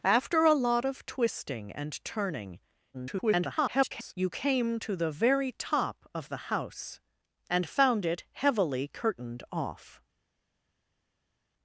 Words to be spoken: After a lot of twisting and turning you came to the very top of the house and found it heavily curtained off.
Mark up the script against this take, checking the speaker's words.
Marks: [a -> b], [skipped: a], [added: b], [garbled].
After a lot of twisting and turning [garbled] you came to the very top of the house and found it heavily curtained off.